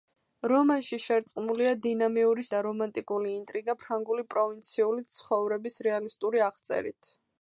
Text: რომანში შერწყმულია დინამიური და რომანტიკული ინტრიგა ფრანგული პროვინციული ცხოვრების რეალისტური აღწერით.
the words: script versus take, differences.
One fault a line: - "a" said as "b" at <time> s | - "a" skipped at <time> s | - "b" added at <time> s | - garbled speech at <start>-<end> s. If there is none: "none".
none